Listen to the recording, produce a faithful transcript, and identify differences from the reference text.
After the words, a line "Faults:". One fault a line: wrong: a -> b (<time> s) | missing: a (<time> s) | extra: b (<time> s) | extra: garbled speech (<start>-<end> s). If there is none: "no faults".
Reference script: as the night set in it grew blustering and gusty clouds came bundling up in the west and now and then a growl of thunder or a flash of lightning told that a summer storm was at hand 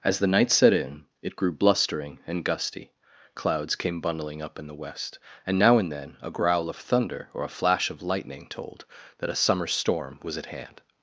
as the night set in it grew blustering and gusty clouds came bundling up in the west and now and then a growl of thunder or a flash of lightning told that a summer storm was at hand
Faults:
no faults